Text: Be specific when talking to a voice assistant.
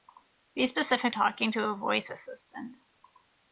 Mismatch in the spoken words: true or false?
true